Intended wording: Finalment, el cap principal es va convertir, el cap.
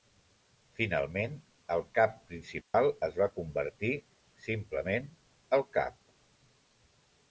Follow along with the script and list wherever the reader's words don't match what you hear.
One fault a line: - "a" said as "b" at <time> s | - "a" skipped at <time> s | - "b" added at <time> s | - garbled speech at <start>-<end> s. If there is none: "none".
- "simplement" added at 4.5 s